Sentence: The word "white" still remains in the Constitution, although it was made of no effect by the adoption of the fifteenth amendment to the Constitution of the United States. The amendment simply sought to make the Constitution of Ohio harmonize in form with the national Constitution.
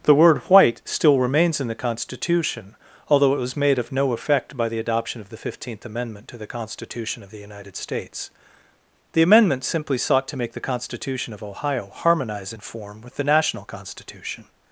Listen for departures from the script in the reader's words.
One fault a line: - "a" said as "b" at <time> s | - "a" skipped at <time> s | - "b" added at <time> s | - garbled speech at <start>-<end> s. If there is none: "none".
none